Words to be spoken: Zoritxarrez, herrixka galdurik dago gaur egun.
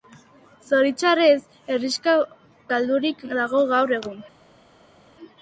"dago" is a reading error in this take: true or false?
false